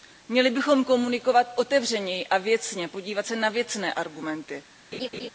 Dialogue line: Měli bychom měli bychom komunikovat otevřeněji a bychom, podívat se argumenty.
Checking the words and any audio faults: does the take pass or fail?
fail